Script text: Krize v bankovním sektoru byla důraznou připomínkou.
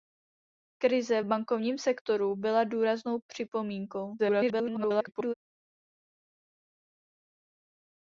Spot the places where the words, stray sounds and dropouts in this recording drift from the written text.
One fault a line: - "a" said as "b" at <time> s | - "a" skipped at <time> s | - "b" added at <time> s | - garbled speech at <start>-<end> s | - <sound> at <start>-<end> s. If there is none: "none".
- garbled speech at 4.2-5.3 s